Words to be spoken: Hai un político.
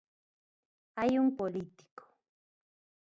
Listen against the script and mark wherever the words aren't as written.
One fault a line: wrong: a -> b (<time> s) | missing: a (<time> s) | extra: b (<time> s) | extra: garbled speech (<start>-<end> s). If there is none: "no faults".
no faults